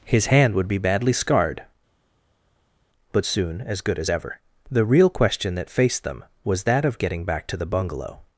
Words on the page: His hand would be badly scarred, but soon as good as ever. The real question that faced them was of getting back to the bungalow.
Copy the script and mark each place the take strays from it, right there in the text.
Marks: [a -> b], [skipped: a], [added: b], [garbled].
His hand would be badly scarred, but soon as good as ever. The real question that faced them was [added: that] of getting back to the bungalow.